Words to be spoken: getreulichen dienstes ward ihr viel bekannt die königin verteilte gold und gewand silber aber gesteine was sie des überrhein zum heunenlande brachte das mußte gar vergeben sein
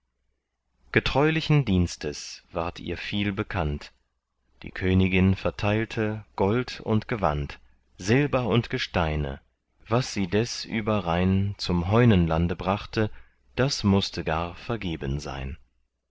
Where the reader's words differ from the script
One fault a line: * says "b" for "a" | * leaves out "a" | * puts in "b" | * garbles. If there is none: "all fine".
* says "und" for "aber"